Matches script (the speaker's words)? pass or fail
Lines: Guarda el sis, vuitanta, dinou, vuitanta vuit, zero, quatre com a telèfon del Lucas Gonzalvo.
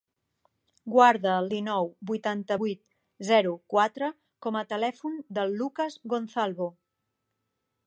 fail